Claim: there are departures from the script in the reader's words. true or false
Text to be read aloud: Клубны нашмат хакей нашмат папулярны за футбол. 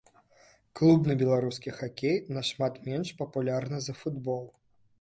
true